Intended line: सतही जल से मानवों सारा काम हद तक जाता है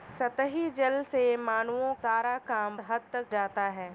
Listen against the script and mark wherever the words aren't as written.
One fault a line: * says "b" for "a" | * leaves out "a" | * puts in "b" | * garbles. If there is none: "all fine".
all fine